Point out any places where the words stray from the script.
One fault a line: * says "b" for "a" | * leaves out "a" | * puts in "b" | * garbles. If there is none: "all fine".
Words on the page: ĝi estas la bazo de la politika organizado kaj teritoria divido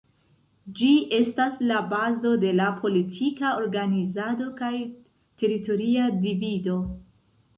all fine